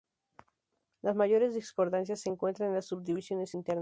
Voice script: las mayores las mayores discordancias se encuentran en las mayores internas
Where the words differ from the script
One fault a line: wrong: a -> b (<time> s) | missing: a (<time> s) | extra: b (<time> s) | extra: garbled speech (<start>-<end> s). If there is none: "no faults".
missing: las mayores (1.5 s)
wrong: mayores -> subdivisiones (2.9 s)